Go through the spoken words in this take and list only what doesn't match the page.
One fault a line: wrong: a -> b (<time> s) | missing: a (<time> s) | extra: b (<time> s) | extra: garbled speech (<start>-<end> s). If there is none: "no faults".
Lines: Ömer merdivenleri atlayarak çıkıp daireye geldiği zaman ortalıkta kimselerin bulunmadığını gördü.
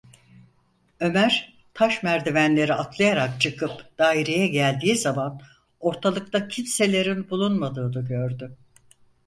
extra: taş (1.7 s)